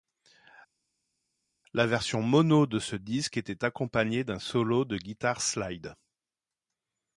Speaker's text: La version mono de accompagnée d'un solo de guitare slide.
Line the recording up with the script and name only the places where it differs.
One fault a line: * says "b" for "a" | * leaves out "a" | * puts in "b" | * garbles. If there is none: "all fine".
* puts in "ce disque était"